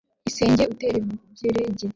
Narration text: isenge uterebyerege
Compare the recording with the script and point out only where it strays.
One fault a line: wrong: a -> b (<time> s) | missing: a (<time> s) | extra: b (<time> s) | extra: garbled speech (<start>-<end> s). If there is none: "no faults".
no faults